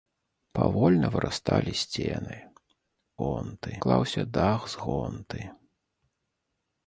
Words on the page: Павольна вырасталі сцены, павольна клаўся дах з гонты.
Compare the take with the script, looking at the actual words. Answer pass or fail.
fail